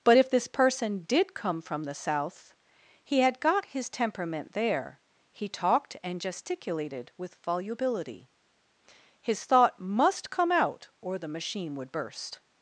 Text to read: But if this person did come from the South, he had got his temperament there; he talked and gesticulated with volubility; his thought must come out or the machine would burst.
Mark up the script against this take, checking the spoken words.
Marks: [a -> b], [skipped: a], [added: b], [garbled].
But if this person did come from the South, he had got his temperament there; he talked and gesticulated with volubility; his thought must come out or the machine would burst.